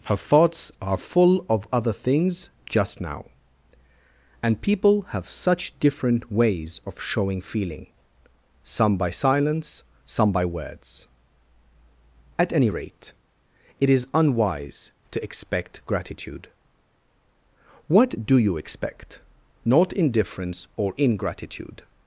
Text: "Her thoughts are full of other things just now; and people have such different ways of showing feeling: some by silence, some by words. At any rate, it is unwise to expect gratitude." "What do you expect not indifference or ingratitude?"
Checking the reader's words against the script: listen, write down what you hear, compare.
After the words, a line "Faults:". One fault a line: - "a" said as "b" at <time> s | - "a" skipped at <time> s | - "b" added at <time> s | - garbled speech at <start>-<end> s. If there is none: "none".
"Her thoughts are full of other things just now; and people have such different ways of showing feeling: some by silence, some by words. At any rate, it is unwise to expect gratitude." "What do you expect not indifference or ingratitude?"
Faults:
none